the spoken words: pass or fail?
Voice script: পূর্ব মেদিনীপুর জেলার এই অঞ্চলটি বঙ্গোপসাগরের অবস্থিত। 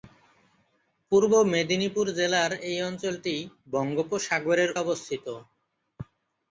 pass